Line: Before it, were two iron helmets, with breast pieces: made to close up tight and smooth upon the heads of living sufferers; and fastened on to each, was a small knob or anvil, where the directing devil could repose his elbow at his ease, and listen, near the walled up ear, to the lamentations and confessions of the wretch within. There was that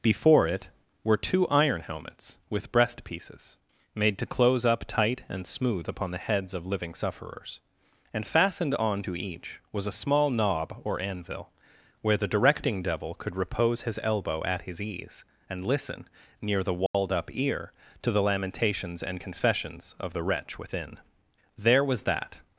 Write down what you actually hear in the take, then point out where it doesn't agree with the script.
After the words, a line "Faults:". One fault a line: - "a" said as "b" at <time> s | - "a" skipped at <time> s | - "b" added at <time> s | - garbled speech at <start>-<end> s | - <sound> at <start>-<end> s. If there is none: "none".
Before it, were two iron helmets, with breast pieces: made to close up tight and smooth upon the heads of living sufferers; and fastened on to each, was a small knob or anvil, where the directing devil could repose his elbow at his ease, and listen, near the walled up ear, to the lamentations and confessions of the wretch within. There was that
Faults:
- dropout at 16.9-16.9 s